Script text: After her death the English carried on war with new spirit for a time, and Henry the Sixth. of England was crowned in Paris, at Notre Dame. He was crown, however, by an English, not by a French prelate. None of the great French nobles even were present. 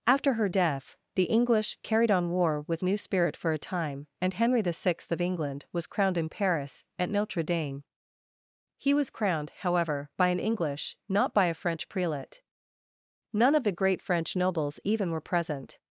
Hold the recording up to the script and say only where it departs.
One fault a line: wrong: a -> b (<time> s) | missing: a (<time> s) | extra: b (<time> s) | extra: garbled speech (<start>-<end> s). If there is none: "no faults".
wrong: crown -> crowned (9.1 s)